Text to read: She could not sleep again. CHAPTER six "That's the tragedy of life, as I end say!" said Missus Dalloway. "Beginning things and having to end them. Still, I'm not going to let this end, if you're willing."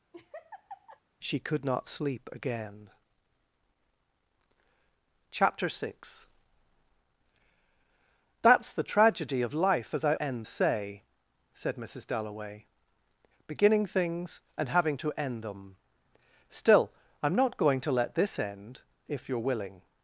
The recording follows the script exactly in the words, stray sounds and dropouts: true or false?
false